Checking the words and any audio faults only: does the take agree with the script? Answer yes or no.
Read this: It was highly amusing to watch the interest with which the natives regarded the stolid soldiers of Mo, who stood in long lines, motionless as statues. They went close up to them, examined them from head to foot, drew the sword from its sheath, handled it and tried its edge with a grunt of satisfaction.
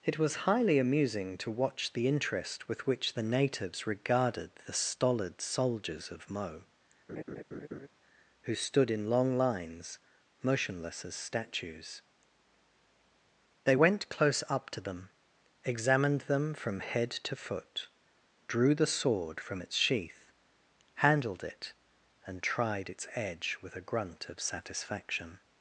no